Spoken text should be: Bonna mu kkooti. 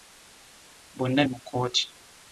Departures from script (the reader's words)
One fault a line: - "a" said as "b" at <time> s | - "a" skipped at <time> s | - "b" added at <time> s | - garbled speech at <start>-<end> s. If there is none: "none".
none